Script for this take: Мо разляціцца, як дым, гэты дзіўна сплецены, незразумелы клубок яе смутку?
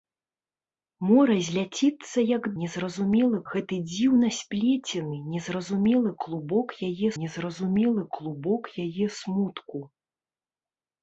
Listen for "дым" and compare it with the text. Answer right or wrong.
wrong